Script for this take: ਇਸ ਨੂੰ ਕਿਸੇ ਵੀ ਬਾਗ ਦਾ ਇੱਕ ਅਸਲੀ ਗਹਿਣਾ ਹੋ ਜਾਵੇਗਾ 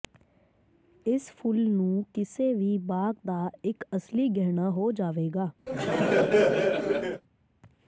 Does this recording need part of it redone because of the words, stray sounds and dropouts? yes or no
yes